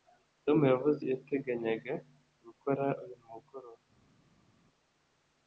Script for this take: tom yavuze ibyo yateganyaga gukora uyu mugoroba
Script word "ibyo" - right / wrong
wrong